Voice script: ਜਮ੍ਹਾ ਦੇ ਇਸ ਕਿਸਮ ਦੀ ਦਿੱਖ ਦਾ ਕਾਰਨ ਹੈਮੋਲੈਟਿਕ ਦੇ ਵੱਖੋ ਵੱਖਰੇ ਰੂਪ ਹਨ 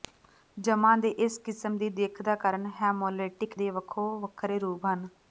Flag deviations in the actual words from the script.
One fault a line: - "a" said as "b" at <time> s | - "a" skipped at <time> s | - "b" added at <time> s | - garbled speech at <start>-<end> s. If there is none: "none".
none